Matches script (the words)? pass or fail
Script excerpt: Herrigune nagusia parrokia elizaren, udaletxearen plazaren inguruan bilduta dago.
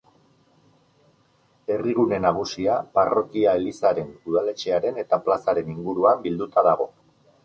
fail